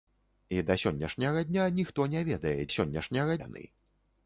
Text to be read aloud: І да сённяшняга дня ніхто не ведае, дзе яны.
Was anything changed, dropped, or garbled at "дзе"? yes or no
yes